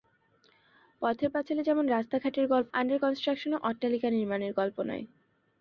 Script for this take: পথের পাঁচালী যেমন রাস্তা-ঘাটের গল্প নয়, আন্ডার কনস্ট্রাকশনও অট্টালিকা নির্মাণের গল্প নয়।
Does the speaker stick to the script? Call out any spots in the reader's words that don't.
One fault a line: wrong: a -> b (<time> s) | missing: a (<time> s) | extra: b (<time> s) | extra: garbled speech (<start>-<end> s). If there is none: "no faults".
missing: নয় (2.7 s)